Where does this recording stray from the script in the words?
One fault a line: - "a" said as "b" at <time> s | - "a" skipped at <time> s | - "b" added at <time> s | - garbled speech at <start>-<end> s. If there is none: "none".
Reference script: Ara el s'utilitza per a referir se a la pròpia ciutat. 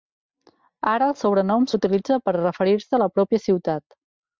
- "sobrenom" added at 1.2 s